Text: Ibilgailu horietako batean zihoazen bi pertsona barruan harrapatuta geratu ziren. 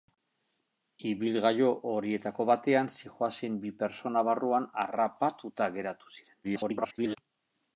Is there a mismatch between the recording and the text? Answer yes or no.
yes